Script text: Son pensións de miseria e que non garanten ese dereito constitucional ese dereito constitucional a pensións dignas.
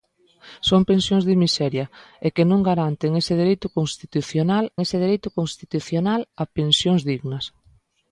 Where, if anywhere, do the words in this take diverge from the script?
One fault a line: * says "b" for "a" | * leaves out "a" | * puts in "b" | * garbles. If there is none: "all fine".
all fine